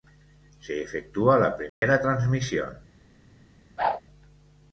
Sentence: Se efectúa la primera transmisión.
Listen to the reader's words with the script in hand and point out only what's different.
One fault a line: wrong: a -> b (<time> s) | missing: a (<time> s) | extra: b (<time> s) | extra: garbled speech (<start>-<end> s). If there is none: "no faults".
no faults